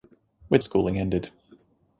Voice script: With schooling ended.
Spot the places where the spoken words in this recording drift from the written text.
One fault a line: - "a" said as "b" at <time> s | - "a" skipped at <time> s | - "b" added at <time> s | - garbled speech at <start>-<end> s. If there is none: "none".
none